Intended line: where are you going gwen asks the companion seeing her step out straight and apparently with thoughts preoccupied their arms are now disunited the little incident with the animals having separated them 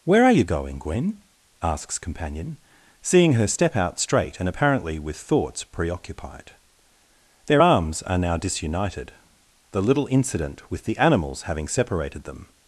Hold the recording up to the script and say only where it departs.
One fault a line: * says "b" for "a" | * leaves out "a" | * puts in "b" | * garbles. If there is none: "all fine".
* leaves out "the"